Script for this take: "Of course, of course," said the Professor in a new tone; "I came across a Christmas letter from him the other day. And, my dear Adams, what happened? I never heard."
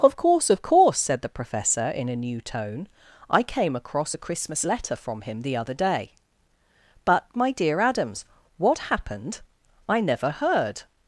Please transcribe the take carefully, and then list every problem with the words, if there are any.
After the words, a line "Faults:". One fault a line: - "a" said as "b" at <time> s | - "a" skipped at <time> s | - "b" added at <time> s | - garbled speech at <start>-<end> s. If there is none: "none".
"Of course, of course," said the Professor in a new tone; "I came across a Christmas letter from him the other day. But, my dear Adams, what happened? I never heard."
Faults:
- "And" said as "But" at 7.0 s